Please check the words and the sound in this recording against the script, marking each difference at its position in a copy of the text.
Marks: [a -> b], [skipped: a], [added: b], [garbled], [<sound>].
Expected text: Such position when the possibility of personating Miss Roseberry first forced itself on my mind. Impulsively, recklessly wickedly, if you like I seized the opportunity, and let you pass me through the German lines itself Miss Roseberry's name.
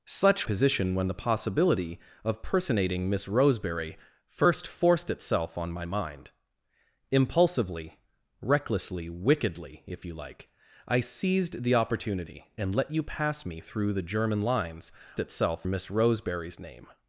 Such position when the possibility of personating Miss Roseberry first forced itself on my mind. Impulsively, recklessly wickedly, if you like I seized the opportunity, and let you pass me through the German lines itself Miss Roseberry's name.